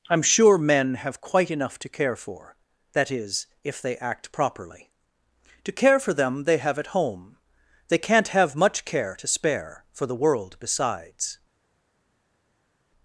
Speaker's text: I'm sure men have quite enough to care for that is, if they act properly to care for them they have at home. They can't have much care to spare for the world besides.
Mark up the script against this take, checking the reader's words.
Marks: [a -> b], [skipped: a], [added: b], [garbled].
I'm sure men have quite enough to care for that is, if they act properly to care for them they have at home. They can't have much care to spare for the world besides.